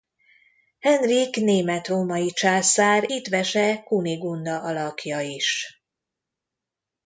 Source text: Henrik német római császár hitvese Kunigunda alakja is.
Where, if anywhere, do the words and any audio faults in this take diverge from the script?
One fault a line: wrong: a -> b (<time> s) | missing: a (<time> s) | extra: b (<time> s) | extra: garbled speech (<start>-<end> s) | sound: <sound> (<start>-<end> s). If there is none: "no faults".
no faults